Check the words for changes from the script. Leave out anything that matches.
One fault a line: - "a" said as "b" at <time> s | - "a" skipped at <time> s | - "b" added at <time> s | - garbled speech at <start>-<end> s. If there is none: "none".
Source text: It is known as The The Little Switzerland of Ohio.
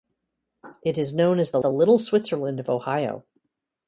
none